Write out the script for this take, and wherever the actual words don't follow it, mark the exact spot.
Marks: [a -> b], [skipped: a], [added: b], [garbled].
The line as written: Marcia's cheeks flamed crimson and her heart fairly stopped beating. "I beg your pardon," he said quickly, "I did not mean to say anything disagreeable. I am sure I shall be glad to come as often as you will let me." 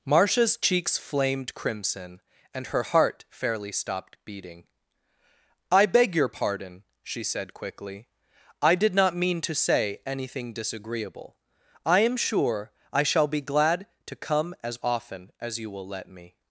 Marcia's cheeks flamed crimson and her heart fairly stopped beating. "I beg your pardon," [he -> she] said quickly, "I did not mean to say anything disagreeable. I am sure I shall be glad to come as often as you will let me."